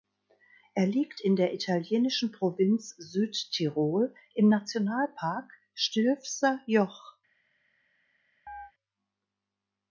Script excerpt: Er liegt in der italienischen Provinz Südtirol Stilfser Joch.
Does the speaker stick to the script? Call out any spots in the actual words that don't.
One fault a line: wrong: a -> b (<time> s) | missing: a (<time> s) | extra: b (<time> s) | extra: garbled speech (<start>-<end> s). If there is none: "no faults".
extra: im Nationalpark (4.3 s)